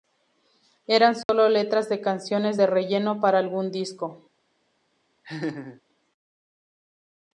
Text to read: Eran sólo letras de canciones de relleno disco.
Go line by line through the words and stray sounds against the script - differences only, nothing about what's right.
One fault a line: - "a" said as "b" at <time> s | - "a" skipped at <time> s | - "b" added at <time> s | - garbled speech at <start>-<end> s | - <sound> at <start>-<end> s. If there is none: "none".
- dropout at 1.2-1.3 s
- "para algún" added at 3.2 s
- laugh at 5.2-5.8 s